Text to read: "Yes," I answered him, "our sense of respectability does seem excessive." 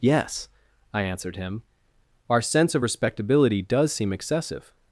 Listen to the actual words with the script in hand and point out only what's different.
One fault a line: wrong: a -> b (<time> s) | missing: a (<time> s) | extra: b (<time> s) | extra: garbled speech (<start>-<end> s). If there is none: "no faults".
no faults